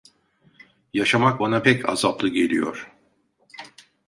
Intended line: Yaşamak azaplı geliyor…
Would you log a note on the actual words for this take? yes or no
yes